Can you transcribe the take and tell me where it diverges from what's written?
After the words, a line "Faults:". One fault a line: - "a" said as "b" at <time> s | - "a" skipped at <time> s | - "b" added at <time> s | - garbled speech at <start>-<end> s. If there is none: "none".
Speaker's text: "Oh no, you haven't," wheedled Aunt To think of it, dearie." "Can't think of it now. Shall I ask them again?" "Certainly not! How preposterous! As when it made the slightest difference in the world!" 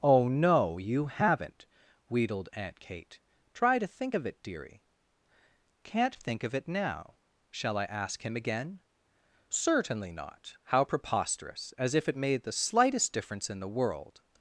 "Oh no, you haven't," wheedled Aunt Kate. "Try to think of it, dearie." "Can't think of it now. Shall I ask him again?" "Certainly not! How preposterous! As if it made the slightest difference in the world!"
Faults:
- "Kate Try" added at 2.8 s
- "them" said as "him" at 8.2 s
- "when" said as "if" at 11.9 s